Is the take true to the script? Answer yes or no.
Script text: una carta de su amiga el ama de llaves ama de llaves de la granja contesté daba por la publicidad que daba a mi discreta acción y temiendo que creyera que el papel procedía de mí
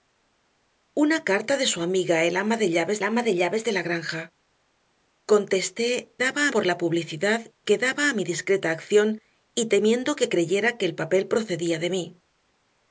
yes